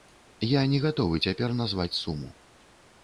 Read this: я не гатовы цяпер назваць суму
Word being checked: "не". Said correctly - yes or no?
yes